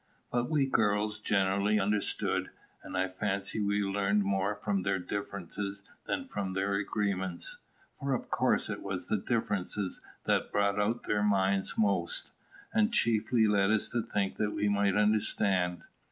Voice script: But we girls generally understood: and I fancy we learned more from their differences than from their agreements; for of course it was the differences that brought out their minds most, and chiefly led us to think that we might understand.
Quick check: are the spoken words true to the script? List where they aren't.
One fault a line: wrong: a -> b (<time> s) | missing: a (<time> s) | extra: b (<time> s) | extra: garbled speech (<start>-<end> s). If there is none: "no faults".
no faults